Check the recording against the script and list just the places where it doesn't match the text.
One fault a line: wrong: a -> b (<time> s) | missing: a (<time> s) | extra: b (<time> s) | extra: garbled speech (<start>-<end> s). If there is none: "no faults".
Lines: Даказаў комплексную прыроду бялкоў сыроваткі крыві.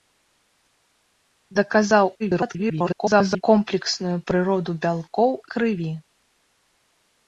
extra: garbled speech (2.2-3.4 s)
missing: сыроваткі (5.3 s)